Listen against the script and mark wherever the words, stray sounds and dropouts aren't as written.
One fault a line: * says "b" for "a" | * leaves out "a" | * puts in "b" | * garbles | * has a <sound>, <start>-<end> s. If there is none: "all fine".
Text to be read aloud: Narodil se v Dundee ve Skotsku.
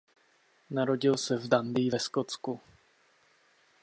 all fine